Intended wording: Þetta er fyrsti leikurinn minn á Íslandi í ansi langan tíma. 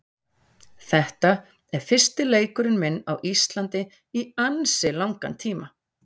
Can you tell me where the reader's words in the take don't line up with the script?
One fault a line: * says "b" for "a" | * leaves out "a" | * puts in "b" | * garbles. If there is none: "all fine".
all fine